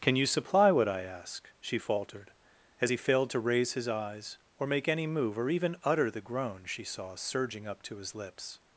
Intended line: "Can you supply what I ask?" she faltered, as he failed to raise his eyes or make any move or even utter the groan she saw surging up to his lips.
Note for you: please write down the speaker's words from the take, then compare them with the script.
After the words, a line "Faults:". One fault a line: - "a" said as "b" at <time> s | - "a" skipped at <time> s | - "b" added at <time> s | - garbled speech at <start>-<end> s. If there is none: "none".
"Can you supply what I ask?" she faltered, as he failed to raise his eyes or make any move or even utter the groan she saw surging up to his lips.
Faults:
none